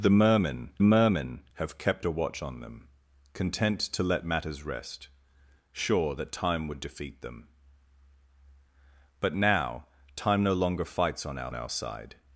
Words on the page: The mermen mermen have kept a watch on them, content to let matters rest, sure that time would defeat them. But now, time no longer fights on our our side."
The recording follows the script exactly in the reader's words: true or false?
true